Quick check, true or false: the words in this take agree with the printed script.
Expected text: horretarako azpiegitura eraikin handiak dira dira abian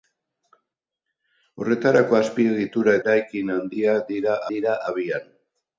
true